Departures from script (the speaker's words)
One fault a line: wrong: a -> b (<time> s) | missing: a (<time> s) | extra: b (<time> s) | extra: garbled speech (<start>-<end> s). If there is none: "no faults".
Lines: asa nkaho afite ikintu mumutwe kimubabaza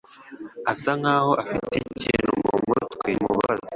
no faults